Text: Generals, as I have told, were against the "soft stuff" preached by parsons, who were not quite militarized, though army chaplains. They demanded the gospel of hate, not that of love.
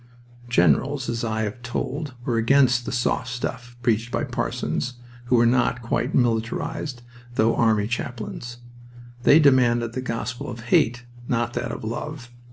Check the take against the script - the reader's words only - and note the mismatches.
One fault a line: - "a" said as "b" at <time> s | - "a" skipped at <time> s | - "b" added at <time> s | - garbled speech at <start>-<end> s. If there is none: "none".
none